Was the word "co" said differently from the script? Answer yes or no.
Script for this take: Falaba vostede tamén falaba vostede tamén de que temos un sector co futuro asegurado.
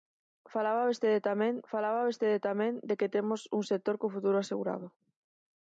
no